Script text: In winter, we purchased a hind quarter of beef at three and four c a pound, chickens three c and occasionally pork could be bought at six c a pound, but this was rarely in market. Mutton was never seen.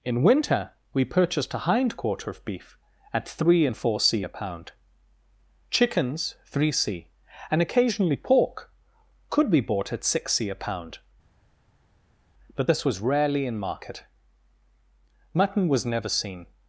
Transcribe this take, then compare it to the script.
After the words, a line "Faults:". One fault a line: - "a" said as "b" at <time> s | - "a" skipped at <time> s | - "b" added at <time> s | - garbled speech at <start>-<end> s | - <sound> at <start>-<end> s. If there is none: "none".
In winter, we purchased a hind quarter of beef at three and four c a pound, chickens three c and occasionally pork could be bought at six c a pound, but this was rarely in market. Mutton was never seen.
Faults:
none